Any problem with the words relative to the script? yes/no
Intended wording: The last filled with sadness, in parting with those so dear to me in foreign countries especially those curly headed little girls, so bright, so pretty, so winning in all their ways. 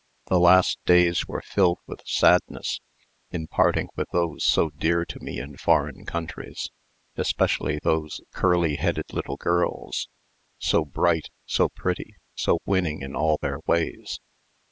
yes